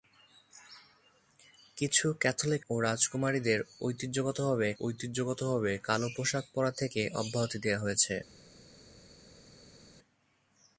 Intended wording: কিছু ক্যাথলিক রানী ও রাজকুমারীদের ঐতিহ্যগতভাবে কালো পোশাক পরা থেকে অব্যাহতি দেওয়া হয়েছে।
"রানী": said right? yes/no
no